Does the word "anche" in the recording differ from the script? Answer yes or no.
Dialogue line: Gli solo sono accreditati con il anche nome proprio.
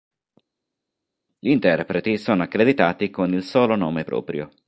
yes